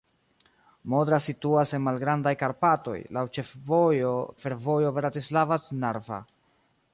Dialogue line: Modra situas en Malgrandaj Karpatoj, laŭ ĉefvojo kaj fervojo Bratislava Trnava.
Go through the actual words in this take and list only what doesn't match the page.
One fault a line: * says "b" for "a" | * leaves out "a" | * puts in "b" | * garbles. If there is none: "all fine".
* leaves out "kaj"